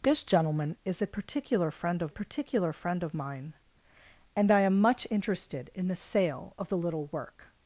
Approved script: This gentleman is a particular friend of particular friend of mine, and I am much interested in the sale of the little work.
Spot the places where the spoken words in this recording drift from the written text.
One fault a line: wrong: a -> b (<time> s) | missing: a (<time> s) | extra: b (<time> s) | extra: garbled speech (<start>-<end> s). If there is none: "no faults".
no faults